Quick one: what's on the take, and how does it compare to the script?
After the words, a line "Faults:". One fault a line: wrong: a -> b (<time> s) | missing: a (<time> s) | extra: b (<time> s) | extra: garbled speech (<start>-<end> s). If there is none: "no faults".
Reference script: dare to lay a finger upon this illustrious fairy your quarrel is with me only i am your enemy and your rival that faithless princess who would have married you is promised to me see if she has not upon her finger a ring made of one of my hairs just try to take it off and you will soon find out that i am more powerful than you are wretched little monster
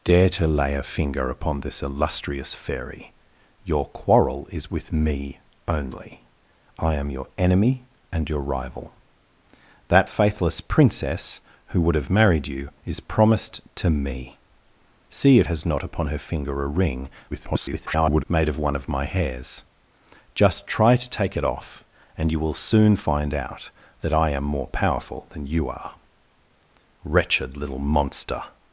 dare to lay a finger upon this illustrious fairy your quarrel is with me only i am your enemy and your rival that faithless princess who would have married you is promised to me see if has not upon her finger a ring [garbled] made of one of my hairs just try to take it off and you will soon find out that i am more powerful than you are wretched little monster
Faults:
missing: she (15.5 s)
extra: garbled speech (17.3-18.2 s)